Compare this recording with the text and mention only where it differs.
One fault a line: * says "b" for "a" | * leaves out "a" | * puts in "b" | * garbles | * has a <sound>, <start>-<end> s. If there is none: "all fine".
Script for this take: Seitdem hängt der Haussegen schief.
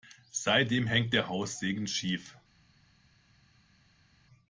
all fine